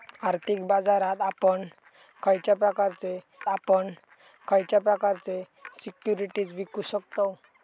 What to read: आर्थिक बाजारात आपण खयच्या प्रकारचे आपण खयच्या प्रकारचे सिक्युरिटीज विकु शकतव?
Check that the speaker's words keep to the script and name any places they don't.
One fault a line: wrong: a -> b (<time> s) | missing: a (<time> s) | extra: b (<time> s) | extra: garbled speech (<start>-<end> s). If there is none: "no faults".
no faults